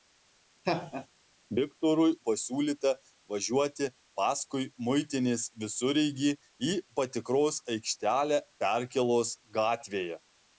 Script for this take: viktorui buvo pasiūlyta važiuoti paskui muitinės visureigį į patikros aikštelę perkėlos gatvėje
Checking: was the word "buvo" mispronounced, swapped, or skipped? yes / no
yes